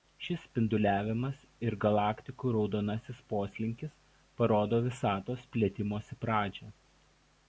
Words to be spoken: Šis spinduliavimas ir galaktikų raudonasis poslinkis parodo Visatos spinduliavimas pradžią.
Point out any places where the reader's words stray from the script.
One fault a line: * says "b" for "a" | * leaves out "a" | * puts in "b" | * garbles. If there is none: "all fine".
* says "plėtimosi" for "spinduliavimas"